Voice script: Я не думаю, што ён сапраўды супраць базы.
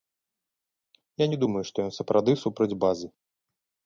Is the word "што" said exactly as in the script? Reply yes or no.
yes